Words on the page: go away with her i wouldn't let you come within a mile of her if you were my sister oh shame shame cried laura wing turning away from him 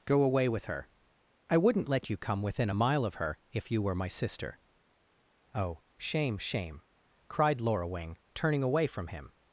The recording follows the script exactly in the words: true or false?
true